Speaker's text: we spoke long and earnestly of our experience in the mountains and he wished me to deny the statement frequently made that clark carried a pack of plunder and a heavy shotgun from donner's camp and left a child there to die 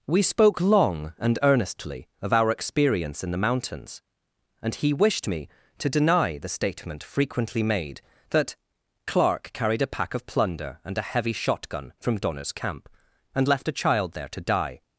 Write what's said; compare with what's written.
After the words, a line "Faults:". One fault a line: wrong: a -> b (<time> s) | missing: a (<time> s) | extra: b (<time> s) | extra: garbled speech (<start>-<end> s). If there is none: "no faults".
we spoke long and earnestly of our experience in the mountains and he wished me to deny the statement frequently made that clark carried a pack of plunder and a heavy shotgun from donner's camp and left a child there to die
Faults:
no faults